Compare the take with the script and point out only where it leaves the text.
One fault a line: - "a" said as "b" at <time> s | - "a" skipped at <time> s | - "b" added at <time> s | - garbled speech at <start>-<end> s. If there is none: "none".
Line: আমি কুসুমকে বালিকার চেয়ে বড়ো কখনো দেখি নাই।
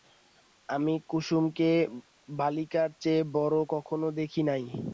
none